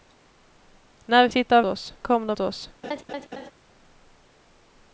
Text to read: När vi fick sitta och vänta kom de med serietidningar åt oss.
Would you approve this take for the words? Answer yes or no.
no